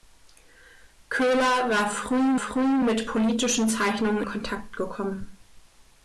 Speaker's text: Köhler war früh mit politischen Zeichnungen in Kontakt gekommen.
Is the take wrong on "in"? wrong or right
wrong